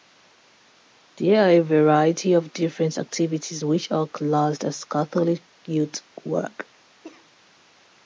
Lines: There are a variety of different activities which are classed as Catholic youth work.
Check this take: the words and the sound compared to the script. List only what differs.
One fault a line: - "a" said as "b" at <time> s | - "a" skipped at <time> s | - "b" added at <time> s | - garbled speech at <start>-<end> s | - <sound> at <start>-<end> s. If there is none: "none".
- cough at 7.0-7.3 s